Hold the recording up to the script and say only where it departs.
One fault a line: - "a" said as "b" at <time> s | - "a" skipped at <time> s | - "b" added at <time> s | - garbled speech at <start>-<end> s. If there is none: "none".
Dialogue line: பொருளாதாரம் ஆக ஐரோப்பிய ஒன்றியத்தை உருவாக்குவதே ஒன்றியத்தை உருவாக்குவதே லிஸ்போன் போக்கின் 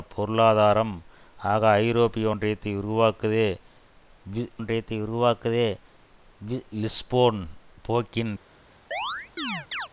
none